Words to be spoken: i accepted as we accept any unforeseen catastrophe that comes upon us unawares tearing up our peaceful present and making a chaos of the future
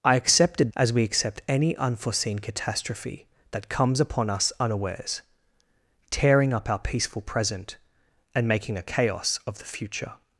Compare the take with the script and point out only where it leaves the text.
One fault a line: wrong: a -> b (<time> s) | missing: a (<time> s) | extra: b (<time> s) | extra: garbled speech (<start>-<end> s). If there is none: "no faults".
no faults